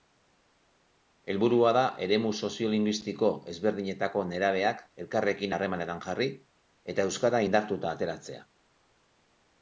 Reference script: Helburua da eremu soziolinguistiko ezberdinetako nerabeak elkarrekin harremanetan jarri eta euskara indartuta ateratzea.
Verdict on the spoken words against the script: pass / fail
pass